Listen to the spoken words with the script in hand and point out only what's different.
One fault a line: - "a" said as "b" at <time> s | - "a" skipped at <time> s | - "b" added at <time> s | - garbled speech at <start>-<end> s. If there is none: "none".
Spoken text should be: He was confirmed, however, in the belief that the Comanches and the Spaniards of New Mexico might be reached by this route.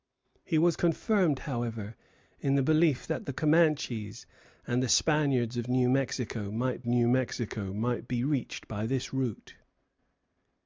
- "New Mexico might" added at 6.9 s